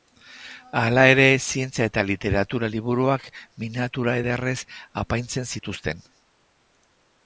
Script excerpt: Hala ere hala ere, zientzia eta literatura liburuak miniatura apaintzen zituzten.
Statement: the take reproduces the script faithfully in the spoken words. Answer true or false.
false